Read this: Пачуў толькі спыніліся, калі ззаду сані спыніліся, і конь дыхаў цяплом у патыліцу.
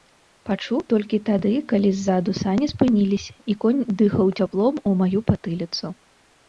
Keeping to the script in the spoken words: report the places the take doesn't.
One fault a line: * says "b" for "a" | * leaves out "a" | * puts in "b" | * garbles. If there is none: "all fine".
* says "тады" for "спыніліся"
* puts in "маю"